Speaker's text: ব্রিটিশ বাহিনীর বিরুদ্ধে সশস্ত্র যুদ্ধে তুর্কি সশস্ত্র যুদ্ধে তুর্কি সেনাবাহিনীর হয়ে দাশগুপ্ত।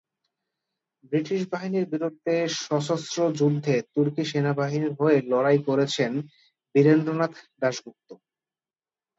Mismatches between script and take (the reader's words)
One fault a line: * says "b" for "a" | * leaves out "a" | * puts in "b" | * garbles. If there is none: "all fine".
* says "সেনাবাহিনীর হয়ে লড়াই করেছেন বীরেন্দ্রনাথ" for "সশস্ত্র যুদ্ধে তুর্কি সেনাবাহিনীর হয়ে"